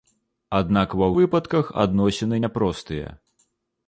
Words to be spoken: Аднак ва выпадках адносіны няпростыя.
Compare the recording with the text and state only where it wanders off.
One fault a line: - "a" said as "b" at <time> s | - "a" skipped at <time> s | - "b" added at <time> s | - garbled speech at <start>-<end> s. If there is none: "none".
none